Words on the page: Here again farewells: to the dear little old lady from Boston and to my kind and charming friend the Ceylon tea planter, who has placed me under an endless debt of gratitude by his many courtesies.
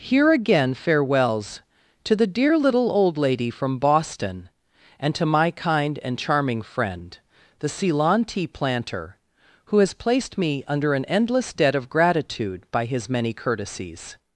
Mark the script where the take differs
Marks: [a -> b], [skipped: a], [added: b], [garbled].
Here again farewells: to the dear little old lady from Boston and to my kind and charming friend the Ceylon tea planter, who has placed me under an endless debt of gratitude by his many courtesies.